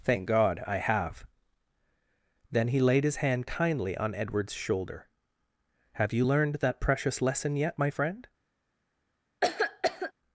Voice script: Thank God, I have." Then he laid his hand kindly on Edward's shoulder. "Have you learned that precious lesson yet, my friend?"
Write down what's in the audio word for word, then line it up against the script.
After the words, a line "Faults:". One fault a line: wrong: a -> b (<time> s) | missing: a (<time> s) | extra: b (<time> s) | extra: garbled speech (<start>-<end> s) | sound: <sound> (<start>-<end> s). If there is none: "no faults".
Thank God, I have." Then he laid his hand kindly on Edward's shoulder. "Have you learned that precious lesson yet, my friend?"
Faults:
sound: cough (9.4-10.1 s)